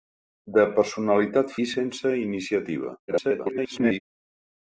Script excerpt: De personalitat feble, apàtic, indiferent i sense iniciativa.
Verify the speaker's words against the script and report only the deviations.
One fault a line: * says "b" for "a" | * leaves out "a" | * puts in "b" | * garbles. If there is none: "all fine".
* leaves out "feble apàtic indiferent"
* garbles